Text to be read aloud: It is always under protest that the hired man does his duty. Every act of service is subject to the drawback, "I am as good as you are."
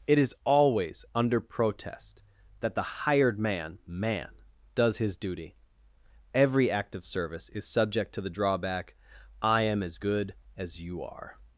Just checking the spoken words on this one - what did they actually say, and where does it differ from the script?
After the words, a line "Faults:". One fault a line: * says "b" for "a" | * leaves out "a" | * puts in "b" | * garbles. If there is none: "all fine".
It is always under protest that the hired man man does his duty. Every act of service is subject to the drawback, "I am as good as you are."
Faults:
* puts in "man"